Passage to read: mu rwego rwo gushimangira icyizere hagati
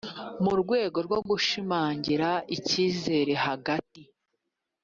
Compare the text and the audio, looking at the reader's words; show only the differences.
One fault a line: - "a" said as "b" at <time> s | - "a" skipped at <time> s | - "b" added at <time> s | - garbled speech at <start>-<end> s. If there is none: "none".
none